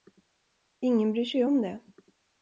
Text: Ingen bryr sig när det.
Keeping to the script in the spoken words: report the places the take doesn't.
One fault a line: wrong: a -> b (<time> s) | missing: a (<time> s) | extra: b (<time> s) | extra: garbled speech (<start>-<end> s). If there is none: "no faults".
wrong: när -> om (1.4 s)